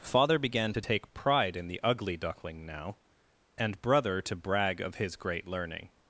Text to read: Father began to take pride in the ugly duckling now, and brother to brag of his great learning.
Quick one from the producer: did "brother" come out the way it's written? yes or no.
yes